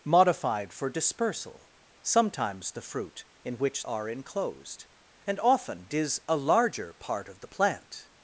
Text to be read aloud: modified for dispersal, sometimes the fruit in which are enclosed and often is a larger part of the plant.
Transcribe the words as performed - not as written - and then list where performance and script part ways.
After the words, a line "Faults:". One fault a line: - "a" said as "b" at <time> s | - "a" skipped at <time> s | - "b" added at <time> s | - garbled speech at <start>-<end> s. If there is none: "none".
modified for dispersal, sometimes the fruit in which are enclosed and often is a larger part of the plant.
Faults:
none